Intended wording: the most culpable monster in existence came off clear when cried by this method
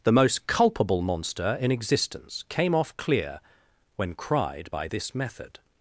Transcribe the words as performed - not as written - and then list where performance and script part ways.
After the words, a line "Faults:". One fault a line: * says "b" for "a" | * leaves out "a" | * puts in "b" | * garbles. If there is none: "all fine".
the most culpable monster in existence came off clear when cried by this method
Faults:
all fine